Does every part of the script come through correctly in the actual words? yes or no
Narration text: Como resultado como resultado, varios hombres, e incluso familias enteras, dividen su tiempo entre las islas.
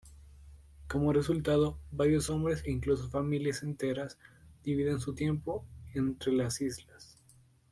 no